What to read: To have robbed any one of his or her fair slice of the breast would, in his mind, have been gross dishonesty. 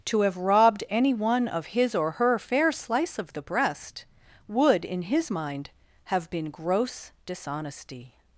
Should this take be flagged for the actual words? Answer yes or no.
no